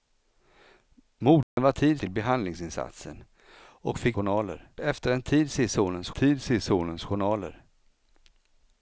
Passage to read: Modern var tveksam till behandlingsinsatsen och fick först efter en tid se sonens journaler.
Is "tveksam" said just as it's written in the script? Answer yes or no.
no